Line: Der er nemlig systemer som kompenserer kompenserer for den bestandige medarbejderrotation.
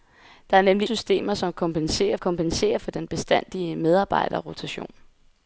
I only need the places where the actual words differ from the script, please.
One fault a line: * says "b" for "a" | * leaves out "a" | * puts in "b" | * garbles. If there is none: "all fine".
all fine